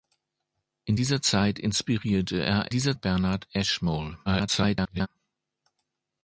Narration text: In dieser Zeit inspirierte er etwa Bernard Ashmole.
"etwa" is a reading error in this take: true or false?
true